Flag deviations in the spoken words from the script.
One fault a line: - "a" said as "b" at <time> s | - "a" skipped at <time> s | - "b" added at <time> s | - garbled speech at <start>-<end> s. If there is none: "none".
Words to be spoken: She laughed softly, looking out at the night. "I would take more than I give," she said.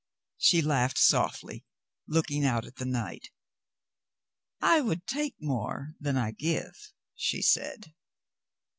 none